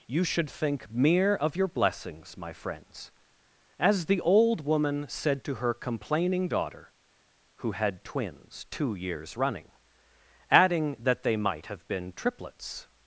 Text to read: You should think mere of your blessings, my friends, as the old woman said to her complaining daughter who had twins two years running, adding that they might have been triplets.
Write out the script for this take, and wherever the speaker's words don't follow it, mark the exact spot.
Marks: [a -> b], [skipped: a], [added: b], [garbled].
You should think mere of your blessings, my friends, as the old woman said to her complaining daughter who had twins two years running, adding that they might have been triplets.